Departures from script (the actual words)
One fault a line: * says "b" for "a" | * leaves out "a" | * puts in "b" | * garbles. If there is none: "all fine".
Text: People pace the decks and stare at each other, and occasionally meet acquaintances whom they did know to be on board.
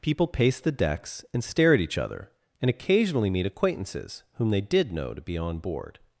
all fine